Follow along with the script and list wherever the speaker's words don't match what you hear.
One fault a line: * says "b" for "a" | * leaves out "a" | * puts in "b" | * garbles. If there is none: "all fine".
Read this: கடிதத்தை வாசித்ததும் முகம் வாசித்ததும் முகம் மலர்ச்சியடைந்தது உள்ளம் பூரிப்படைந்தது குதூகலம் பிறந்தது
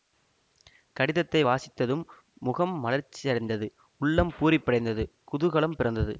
* leaves out "வாசித்ததும் முகம்"